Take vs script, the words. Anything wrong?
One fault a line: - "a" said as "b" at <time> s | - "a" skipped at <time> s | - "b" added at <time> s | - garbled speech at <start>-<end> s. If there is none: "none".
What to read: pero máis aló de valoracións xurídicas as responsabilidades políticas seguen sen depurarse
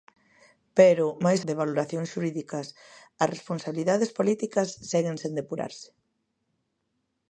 - "aló" skipped at 1.4 s